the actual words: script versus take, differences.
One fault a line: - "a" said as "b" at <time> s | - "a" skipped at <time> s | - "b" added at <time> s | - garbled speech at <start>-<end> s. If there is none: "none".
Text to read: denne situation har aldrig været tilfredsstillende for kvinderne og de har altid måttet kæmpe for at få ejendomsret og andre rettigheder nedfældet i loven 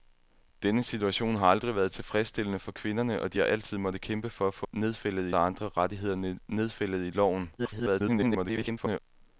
- "ejendomsret" said as "nedfældet" at 4.7 s
- garbled speech at 7.6-9.0 s